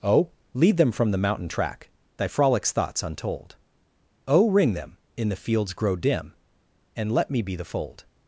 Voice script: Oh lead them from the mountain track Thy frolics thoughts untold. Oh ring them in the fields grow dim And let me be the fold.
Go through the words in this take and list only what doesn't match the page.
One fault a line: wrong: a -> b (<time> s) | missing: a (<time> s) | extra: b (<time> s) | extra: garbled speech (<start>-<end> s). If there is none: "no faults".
no faults